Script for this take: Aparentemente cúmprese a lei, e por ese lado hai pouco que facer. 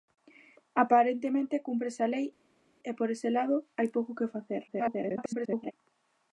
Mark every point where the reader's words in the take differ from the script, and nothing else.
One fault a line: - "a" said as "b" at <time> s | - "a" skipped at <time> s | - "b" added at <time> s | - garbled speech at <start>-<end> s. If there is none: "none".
- garbled speech at 4.7-5.7 s